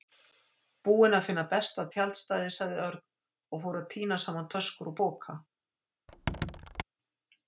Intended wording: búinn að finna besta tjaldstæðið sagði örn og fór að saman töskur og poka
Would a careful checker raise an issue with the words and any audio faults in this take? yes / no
yes